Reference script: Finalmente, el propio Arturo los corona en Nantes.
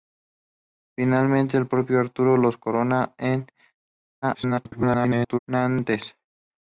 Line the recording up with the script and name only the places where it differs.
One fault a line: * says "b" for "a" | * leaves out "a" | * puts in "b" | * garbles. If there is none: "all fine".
* garbles